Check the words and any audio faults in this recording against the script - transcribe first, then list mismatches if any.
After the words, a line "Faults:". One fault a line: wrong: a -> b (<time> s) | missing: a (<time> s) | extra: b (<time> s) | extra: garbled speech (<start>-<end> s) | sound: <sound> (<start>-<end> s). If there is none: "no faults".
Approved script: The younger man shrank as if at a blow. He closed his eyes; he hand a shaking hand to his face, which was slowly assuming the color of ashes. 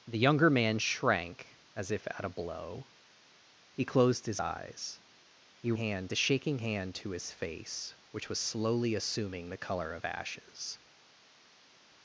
The younger man shrank as if at a blow. He closed his eyes; he hand a shaking hand to his face, which was slowly assuming the color of ashes.
Faults:
no faults